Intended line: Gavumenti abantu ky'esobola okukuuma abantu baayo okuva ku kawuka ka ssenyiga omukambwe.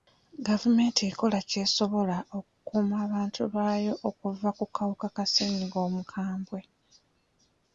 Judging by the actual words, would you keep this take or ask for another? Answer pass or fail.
fail